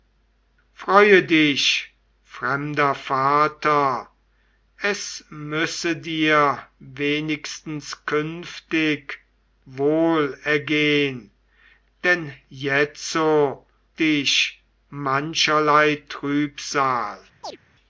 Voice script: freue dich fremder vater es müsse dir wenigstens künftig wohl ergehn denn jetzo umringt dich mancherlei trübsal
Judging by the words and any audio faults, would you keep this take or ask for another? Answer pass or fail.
fail